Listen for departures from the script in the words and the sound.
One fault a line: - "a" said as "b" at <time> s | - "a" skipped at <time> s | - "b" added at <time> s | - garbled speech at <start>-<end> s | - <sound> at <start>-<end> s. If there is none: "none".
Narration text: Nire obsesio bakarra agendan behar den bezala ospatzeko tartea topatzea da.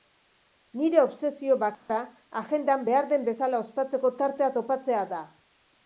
- dropout at 1.7-1.9 s